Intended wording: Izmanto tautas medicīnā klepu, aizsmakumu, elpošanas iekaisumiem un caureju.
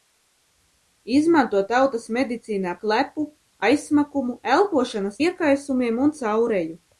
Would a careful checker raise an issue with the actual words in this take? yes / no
no